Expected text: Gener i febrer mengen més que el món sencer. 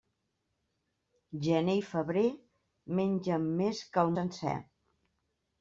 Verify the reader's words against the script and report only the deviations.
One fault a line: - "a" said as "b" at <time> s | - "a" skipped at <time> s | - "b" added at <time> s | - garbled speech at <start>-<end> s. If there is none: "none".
- "món" skipped at 4.2 s